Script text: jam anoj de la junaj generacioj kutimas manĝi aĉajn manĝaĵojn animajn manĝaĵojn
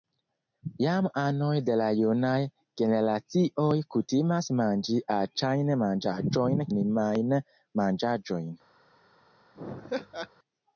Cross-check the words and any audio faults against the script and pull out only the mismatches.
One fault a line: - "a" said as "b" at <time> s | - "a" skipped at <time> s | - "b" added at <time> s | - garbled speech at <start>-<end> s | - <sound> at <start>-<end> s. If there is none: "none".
- laugh at 9.5-10.3 s